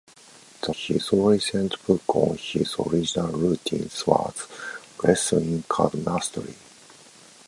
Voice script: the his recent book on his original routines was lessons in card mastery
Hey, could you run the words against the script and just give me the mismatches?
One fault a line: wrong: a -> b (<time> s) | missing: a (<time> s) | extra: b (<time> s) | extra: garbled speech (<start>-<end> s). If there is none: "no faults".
no faults